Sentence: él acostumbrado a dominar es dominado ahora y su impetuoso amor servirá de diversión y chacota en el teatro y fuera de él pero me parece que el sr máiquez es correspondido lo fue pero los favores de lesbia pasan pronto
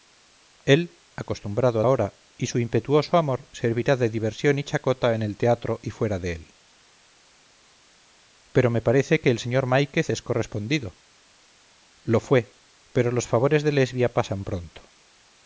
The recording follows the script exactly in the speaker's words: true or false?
false